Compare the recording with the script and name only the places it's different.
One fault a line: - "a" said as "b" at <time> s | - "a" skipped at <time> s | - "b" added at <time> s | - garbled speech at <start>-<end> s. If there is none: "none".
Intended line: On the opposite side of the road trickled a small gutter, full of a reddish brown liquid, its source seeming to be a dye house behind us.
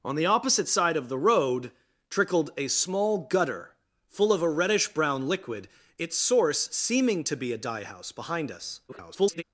- garbled speech at 8.9-9.4 s